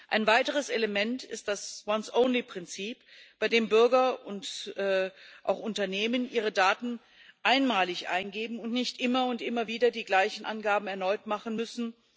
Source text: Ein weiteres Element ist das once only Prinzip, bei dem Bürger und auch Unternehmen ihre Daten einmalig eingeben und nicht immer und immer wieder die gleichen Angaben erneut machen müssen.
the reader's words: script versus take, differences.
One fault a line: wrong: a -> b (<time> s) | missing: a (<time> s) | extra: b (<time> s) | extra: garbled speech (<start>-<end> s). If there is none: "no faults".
no faults